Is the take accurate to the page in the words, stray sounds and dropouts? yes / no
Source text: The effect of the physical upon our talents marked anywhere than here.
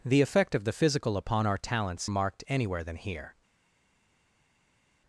yes